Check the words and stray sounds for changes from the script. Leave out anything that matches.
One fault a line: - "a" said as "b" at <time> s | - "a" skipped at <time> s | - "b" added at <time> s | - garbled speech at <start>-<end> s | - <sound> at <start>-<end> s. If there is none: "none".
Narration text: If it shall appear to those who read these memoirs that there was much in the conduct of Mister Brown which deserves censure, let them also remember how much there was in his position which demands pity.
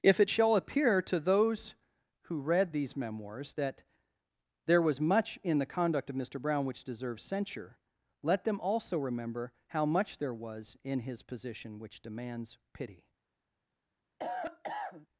- cough at 14.2-15.1 s